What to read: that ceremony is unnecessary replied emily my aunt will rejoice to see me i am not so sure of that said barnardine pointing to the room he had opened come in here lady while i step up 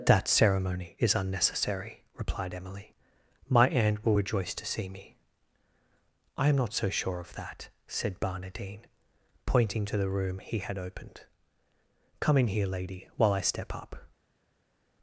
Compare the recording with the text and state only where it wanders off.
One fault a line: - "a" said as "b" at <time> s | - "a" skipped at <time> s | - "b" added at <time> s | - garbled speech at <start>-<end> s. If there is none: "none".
none